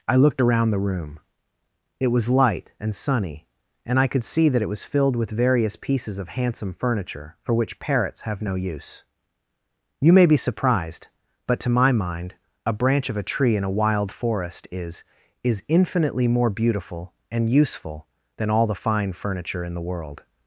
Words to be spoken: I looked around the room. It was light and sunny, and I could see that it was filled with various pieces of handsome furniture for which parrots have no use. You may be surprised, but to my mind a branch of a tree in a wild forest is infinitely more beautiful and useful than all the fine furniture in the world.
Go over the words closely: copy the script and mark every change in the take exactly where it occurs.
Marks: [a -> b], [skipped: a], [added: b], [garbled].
I looked around the room. It was light and sunny, and I could see that it was filled with various pieces of handsome furniture for which parrots have no use. You may be surprised, but to my mind a branch of a tree in a wild forest is [added: is] infinitely more beautiful and useful than all the fine furniture in the world.